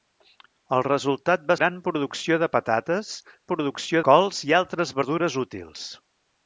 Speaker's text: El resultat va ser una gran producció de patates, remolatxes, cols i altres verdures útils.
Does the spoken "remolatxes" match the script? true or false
false